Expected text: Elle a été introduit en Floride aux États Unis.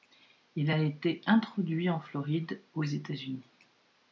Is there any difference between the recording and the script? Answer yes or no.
yes